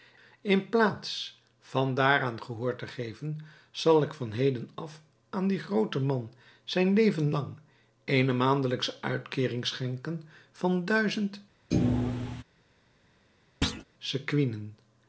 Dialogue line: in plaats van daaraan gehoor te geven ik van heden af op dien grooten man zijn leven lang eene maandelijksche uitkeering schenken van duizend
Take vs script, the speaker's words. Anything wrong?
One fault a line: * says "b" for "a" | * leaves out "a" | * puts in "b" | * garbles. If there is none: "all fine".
* puts in "zal"
* says "aan" for "op"